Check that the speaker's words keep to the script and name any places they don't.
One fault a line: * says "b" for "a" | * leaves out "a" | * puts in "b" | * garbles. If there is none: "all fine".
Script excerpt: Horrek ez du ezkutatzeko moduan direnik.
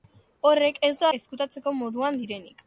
all fine